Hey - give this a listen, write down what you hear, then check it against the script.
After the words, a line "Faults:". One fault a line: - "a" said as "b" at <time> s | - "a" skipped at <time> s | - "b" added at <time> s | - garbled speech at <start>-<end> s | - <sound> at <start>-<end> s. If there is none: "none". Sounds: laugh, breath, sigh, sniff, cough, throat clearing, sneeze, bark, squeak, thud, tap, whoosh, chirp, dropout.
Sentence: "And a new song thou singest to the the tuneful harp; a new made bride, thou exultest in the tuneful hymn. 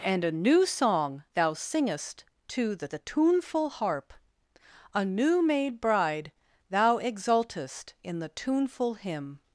"And a new song thou singest to the the tuneful harp; a new made bride, thou exultest in the tuneful hymn.
Faults:
none